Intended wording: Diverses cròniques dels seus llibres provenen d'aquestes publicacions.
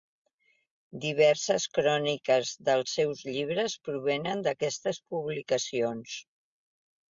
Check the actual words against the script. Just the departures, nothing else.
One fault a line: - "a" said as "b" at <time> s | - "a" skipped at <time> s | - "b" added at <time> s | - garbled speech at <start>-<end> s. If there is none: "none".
none